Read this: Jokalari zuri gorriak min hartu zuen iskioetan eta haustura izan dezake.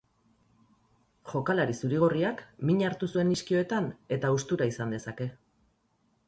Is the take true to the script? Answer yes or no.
yes